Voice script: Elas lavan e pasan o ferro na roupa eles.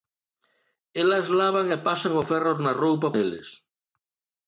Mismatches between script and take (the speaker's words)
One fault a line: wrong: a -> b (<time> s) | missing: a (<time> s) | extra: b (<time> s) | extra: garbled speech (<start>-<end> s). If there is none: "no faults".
no faults